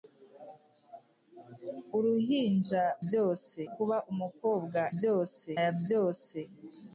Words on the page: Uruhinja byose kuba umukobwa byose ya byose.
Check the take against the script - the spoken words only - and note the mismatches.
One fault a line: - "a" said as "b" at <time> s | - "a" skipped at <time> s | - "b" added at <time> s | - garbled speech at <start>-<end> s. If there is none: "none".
none